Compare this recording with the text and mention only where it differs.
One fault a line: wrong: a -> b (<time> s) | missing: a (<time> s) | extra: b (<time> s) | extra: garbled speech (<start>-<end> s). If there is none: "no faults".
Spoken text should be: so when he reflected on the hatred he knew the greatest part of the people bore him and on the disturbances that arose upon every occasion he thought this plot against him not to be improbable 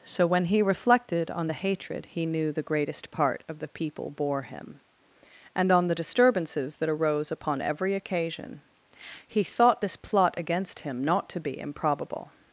no faults